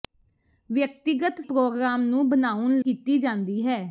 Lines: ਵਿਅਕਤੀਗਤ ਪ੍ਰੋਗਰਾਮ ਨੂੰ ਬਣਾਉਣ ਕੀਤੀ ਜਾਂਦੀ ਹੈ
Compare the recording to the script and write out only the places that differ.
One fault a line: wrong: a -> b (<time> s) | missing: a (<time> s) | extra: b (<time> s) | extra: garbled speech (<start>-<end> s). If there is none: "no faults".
no faults